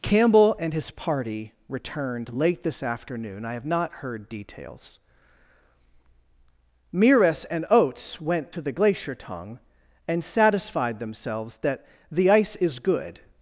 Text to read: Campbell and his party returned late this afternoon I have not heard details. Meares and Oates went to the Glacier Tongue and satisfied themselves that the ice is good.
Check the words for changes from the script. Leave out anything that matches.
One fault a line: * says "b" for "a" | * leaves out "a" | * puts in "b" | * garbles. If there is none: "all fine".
all fine